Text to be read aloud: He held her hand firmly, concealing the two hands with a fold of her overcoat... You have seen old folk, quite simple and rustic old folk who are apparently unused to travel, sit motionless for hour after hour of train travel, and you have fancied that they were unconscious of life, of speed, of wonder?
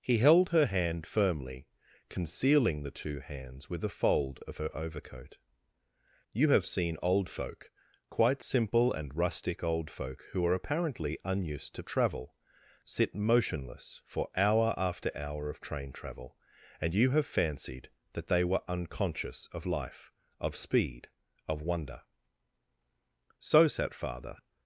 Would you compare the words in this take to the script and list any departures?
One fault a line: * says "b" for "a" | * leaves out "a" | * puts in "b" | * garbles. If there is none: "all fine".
* puts in "So sat Father"